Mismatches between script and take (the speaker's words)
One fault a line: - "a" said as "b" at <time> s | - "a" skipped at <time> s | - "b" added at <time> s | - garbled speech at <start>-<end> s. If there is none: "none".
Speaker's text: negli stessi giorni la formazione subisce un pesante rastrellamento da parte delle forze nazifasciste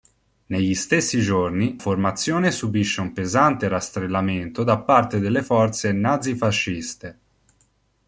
- "la" skipped at 1.8 s